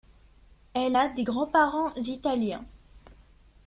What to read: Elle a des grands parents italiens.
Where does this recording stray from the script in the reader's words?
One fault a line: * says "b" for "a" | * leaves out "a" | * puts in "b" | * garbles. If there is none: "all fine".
all fine